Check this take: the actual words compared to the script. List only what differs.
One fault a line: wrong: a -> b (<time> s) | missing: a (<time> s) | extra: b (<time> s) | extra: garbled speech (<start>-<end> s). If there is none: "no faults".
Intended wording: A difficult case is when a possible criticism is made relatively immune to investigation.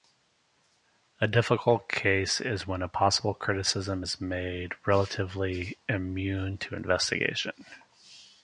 no faults